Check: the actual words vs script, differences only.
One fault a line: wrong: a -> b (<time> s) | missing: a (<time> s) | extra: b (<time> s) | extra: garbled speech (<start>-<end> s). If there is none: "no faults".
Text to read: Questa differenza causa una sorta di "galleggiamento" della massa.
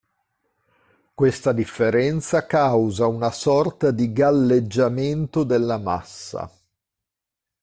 no faults